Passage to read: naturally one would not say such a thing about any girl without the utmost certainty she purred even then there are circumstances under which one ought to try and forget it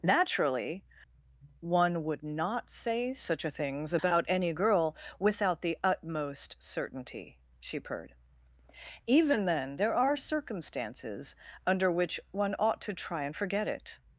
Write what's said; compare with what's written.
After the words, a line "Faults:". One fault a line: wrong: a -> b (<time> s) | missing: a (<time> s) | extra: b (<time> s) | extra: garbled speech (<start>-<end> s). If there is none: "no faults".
naturally one would not say such a things about any girl without the utmost certainty she purred even then there are circumstances under which one ought to try and forget it
Faults:
wrong: thing -> things (3.5 s)